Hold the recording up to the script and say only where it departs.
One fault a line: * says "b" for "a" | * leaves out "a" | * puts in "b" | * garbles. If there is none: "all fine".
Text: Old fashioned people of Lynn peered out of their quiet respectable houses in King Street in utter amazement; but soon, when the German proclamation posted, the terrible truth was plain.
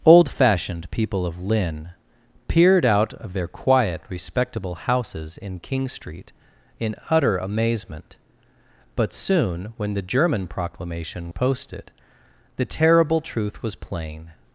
all fine